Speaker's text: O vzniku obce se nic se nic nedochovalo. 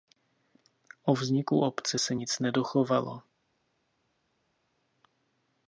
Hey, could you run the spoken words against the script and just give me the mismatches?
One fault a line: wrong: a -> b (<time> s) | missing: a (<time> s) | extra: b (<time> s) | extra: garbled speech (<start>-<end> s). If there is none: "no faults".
missing: se nic (2.4 s)